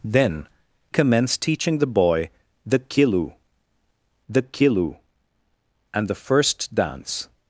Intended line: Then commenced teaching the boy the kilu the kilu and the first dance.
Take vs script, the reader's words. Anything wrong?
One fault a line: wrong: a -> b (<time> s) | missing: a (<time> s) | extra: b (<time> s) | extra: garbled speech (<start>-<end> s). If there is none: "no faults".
no faults